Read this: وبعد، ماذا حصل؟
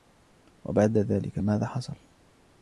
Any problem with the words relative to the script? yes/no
yes